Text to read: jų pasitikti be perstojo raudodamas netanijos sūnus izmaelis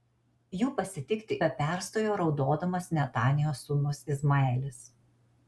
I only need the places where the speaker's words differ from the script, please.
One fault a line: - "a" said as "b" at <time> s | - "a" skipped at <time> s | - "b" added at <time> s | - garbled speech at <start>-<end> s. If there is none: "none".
none